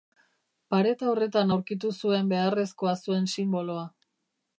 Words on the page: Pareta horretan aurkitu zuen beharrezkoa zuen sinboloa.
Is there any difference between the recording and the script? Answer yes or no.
no